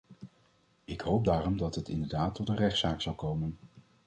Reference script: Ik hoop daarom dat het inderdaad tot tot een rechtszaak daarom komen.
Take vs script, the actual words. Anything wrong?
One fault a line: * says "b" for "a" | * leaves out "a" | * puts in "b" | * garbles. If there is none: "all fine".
* leaves out "tot"
* says "zal" for "daarom"